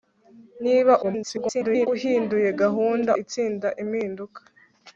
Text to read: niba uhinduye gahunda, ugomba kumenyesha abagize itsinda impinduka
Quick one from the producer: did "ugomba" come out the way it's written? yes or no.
no